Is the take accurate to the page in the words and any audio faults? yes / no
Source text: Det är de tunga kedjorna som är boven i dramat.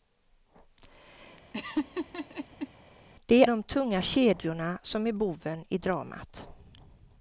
no